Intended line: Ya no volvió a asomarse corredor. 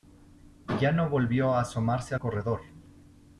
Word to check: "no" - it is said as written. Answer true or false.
true